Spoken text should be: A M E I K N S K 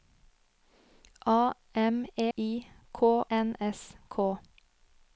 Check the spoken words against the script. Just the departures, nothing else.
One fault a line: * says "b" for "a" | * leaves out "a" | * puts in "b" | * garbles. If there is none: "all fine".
all fine